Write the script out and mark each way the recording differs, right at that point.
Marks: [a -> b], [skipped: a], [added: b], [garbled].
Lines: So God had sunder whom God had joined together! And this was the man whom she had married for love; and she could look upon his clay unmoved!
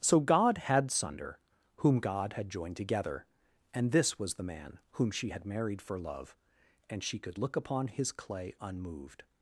So God had sunder whom God had joined together! And this was the man whom she had married for love; and she could look upon his clay unmoved!